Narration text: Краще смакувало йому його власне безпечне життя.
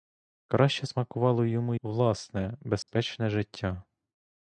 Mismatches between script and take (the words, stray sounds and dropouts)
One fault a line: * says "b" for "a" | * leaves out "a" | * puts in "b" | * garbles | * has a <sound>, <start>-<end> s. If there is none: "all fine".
* leaves out "його"
* has a dropout, 2.8-2.9 s